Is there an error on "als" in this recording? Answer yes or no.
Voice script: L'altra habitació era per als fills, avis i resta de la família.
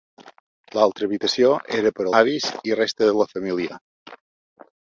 yes